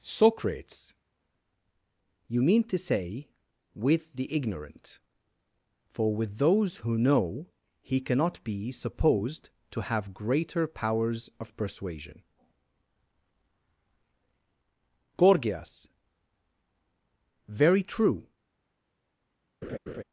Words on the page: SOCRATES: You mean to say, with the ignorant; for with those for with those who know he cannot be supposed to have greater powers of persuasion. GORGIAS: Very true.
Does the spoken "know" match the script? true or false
true